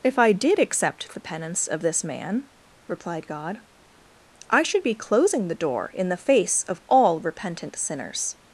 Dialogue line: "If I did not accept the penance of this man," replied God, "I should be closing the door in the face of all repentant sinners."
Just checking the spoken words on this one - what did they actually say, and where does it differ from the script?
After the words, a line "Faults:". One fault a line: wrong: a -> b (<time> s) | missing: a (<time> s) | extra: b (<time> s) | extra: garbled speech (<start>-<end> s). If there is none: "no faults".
"If I did accept the penance of this man," replied God, "I should be closing the door in the face of all repentant sinners."
Faults:
missing: not (0.6 s)